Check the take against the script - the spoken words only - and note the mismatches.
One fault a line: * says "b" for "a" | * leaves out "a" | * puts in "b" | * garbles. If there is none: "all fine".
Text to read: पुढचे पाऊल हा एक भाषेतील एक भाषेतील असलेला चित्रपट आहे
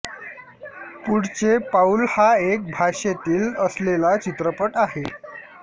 * leaves out "एक भाषेतील"